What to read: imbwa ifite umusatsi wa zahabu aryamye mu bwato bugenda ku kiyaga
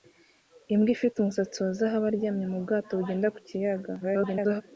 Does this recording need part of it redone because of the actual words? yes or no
yes